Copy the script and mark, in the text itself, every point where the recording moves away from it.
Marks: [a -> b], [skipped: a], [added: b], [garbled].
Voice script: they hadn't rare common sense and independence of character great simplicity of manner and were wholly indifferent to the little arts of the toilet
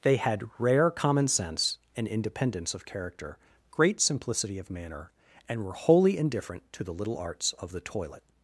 they [hadn't -> had] rare common sense and independence of character great simplicity of manner and were wholly indifferent to the little arts of the toilet